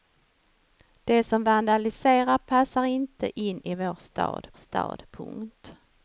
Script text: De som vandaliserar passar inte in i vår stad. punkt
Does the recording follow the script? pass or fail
fail